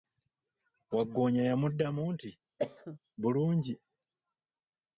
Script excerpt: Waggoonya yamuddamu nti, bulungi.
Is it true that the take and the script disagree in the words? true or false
false